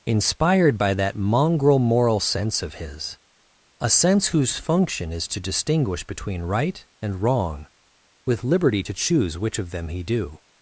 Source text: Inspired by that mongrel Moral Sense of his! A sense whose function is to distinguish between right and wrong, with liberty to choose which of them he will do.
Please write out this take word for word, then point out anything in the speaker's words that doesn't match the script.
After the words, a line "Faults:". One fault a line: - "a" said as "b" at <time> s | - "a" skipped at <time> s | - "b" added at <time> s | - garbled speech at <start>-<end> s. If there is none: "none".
Inspired by that mongrel Moral Sense of his! A sense whose function is to distinguish between right and wrong, with liberty to choose which of them he do.
Faults:
- "will" skipped at 10.0 s